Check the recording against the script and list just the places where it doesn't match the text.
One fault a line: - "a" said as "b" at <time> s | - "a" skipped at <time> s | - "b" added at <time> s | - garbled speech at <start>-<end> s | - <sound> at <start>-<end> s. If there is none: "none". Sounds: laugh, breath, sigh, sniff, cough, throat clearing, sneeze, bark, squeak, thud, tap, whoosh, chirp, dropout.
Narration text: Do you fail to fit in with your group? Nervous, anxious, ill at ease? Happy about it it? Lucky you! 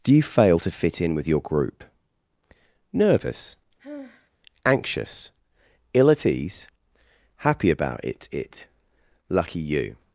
- sigh at 3.8-4.3 s